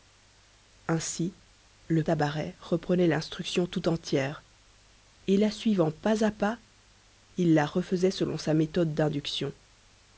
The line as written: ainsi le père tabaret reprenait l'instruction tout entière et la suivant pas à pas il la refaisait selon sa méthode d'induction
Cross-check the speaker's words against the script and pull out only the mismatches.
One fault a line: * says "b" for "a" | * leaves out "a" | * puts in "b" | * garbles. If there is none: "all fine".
* leaves out "père"